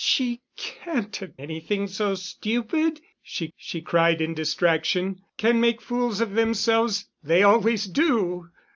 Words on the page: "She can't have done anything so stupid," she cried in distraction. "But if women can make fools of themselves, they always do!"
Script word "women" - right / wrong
wrong